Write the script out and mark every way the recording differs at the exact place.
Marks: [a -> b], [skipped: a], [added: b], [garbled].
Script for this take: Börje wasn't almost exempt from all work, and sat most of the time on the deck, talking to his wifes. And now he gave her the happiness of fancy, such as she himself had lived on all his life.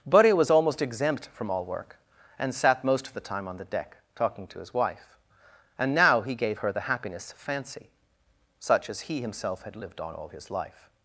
Börje [wasn't -> was] almost exempt from all work, and sat most of the time on the deck, talking to his [wifes. -> wife] And now he gave her the happiness of fancy, such as [she -> he] himself had lived on all his life.